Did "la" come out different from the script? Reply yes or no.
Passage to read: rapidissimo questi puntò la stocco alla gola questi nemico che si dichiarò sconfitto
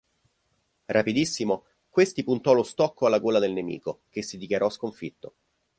yes